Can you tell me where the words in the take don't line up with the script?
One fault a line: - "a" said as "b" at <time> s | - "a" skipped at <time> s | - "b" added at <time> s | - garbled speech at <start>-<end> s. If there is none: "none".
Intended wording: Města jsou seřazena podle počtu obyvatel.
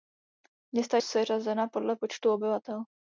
- "jsou" skipped at 1.0 s